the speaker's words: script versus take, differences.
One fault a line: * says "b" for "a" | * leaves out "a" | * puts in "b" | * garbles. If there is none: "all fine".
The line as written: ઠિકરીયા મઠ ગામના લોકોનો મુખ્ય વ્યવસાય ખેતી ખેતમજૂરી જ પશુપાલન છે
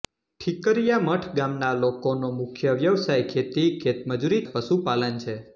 all fine